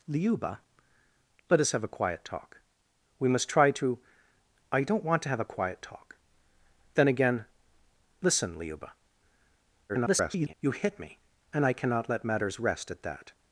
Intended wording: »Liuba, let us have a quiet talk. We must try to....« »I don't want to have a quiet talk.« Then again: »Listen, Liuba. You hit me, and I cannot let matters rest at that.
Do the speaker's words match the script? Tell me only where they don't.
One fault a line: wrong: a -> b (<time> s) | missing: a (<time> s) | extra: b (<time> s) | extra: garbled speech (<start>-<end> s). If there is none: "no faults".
extra: garbled speech (9.9-10.5 s)